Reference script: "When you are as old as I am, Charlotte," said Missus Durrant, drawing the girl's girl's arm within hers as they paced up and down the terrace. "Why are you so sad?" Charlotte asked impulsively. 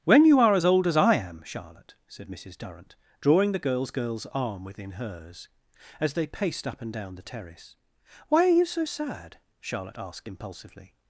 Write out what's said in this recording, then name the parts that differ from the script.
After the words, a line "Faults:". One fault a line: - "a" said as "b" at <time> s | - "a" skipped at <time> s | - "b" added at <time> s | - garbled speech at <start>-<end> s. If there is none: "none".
"When you are as old as I am, Charlotte," said Missus Durrant, drawing the girl's girl's arm within hers as they paced up and down the terrace. "Why are you so sad?" Charlotte asked impulsively.
Faults:
none